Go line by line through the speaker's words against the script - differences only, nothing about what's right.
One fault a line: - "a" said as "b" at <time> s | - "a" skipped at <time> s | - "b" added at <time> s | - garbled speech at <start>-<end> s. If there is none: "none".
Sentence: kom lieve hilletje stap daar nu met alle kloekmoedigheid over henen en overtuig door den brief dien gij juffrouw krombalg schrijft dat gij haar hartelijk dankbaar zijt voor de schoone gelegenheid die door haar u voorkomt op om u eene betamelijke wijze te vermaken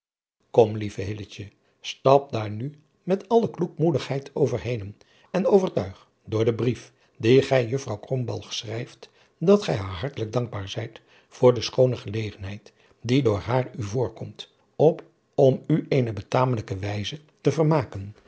none